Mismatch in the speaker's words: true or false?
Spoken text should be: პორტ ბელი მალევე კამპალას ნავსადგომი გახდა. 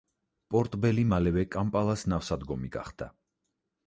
false